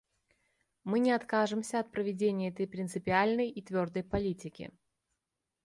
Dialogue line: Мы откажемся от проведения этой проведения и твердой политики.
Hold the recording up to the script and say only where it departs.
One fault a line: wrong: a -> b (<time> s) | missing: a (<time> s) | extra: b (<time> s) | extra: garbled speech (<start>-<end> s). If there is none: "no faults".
extra: не (1.0 s)
wrong: проведения -> принципиальной (2.7 s)